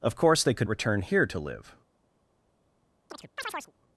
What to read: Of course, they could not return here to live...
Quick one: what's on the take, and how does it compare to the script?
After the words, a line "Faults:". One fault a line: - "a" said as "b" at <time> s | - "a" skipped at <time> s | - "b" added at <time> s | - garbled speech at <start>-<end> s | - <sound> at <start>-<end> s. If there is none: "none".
Of course, they could return here to live...
Faults:
- "not" skipped at 0.7 s
- chirp at 3.1-3.7 s